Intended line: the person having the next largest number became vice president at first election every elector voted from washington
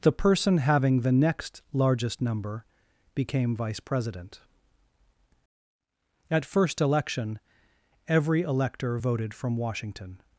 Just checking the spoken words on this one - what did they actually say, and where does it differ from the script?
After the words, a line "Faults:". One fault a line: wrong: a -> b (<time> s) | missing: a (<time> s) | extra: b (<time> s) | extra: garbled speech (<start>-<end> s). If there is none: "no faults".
the person having the next largest number became vice president at first election every elector voted from washington
Faults:
no faults